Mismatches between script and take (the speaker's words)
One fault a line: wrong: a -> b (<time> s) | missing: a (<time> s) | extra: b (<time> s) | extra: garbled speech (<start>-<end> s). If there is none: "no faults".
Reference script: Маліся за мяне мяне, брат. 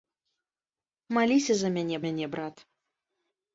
no faults